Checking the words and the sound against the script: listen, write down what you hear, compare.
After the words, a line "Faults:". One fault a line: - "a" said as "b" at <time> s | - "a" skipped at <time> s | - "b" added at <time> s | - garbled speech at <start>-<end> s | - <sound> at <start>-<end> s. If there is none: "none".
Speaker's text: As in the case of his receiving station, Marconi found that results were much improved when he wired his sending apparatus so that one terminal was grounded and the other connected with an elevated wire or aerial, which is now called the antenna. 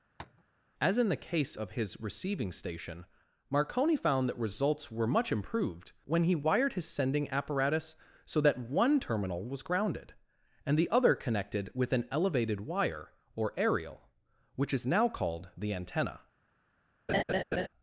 As in the case of his receiving station, Marconi found that results were much improved when he wired his sending apparatus so that one terminal was grounded and the other connected with an elevated wire or aerial, which is now called the antenna.
Faults:
- tap at 0.2-0.4 s
- laugh at 17.1-17.7 s